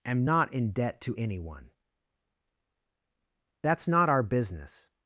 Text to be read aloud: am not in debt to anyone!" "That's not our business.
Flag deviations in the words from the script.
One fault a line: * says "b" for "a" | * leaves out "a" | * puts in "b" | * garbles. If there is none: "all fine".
all fine